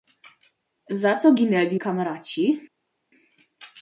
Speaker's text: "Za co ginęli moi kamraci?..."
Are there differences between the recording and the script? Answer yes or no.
yes